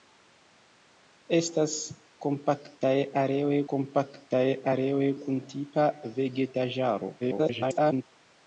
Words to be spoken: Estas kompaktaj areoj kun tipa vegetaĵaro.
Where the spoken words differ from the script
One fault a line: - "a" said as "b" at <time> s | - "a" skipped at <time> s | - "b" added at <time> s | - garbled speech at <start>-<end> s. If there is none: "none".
- "kompaktaj areoj" added at 3.7 s
- garbled speech at 7.2-8.0 s